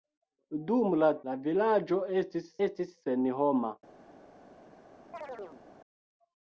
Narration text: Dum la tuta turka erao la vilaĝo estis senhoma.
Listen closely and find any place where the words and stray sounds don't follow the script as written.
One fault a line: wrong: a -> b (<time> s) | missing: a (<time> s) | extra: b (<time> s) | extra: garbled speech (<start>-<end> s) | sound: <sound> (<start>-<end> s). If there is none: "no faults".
missing: tuta turka erao (1.1 s)
extra: estis (2.7 s)
sound: chirp (5.1-5.6 s)